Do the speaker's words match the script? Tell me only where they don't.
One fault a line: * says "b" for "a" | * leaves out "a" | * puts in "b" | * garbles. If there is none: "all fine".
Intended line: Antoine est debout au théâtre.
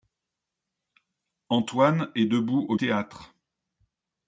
all fine